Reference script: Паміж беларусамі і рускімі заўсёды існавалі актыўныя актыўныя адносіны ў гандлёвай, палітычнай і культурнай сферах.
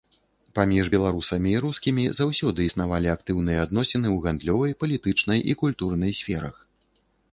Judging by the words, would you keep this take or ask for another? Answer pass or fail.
fail